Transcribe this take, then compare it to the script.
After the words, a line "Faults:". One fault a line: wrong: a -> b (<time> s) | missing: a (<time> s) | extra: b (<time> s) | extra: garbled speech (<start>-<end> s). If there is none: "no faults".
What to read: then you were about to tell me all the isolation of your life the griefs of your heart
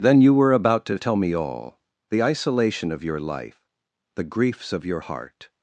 then you were about to tell me all the isolation of your life the griefs of your heart
Faults:
no faults